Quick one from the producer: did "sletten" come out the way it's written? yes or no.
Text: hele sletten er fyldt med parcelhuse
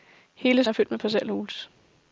no